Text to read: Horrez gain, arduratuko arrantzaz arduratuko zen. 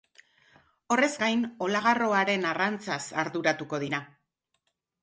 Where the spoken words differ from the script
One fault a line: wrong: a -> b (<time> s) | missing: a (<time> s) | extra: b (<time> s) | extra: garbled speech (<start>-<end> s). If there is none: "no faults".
wrong: arduratuko -> olagarroaren (1.7 s)
wrong: zen -> dira (3.9 s)